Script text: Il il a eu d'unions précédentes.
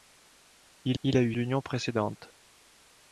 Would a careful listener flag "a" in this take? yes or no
no